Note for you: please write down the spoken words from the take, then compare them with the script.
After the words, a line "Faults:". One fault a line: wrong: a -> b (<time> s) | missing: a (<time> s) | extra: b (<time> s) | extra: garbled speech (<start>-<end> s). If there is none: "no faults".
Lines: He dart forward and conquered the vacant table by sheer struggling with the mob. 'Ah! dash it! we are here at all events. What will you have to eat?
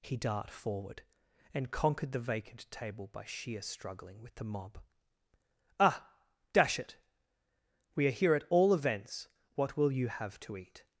He dart forward and conquered the vacant table by sheer struggling with the mob. 'Ah! dash it! we are here at all events. What will you have to eat?
Faults:
no faults